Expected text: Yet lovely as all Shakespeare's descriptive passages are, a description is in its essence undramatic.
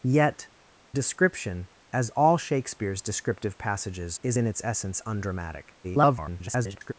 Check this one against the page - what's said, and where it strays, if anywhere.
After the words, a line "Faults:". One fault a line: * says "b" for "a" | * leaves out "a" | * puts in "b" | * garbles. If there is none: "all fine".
Yet description as all Shakespeare's descriptive passages is in its essence undramatic. [garbled]
Faults:
* says "description" for "lovely"
* leaves out "are a description"
* garbles